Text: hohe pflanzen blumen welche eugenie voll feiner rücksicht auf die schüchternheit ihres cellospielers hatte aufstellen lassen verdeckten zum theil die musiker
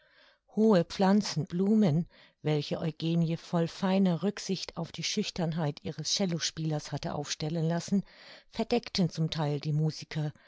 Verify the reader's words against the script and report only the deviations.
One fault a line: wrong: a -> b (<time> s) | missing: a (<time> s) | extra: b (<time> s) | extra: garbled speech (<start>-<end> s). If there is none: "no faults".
no faults